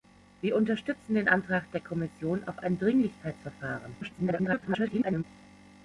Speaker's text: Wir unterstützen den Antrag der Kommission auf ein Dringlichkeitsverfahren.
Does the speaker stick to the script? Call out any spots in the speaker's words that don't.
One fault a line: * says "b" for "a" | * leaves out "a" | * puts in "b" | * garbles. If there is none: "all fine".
* garbles